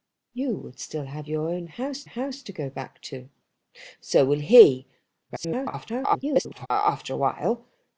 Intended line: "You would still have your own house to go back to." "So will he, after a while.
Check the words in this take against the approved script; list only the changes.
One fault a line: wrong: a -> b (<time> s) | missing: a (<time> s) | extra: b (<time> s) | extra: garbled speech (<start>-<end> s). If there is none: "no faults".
extra: house (2.0 s)
extra: garbled speech (5.3-6.7 s)